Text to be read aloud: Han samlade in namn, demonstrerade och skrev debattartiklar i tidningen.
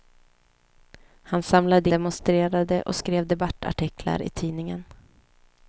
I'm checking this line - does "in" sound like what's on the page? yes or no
no